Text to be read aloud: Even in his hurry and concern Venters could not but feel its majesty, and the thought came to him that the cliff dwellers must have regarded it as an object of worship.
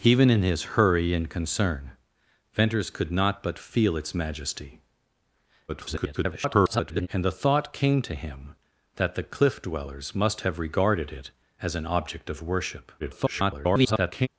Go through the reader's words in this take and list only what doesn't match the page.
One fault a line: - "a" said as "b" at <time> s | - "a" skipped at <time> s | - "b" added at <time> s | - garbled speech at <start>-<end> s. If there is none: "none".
- garbled speech at 5.7-7.1 s
- garbled speech at 13.0-14.3 s